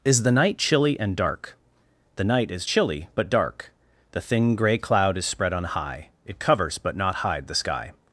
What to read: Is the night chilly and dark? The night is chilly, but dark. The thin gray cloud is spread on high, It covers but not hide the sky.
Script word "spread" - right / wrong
right